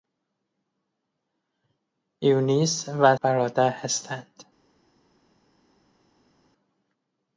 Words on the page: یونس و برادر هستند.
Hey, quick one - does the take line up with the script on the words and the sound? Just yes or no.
yes